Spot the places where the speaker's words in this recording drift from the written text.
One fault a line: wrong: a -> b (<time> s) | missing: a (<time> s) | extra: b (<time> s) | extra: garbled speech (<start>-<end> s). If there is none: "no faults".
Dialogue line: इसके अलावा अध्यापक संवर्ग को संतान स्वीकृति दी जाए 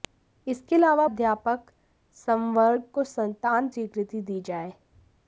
no faults